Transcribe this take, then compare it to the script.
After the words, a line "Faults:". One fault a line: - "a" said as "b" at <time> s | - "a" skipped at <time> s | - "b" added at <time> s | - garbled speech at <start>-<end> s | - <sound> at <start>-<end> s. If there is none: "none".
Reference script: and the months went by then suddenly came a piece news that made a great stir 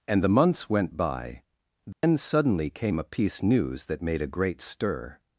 and the months went by then suddenly came a piece news that made a great stir
Faults:
- dropout at 1.9-2.0 s